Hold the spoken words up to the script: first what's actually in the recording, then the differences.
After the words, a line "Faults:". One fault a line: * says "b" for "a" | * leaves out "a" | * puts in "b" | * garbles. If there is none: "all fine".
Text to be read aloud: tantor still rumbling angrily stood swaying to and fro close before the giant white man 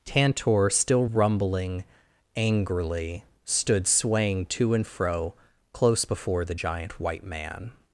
tantor still rumbling angrily stood swaying to and fro close before the giant white man
Faults:
all fine